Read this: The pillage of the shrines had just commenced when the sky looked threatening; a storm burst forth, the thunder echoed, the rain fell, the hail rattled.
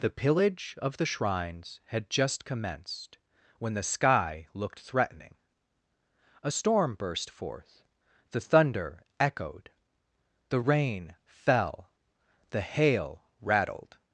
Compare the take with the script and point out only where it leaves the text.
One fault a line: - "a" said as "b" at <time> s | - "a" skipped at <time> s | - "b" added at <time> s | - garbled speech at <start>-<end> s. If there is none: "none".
none